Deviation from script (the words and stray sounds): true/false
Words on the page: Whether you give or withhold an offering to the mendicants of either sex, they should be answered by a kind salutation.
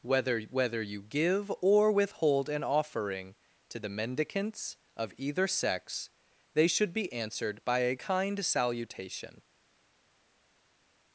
true